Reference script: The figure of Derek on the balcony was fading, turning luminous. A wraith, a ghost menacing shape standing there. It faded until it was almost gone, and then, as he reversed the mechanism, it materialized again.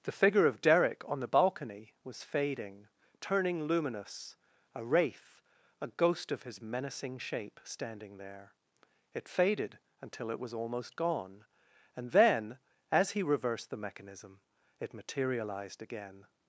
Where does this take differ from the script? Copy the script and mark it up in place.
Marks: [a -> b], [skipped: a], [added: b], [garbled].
The figure of Derek on the balcony was fading, turning luminous. A wraith, a ghost [added: of his] menacing shape standing there. It faded until it was almost gone, and then, as he reversed the mechanism, it materialized again.